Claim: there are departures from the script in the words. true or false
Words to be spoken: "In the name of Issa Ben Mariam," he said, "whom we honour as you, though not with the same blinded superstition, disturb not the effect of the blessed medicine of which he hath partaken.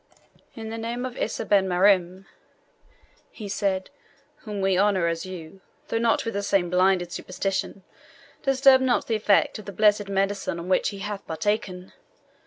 false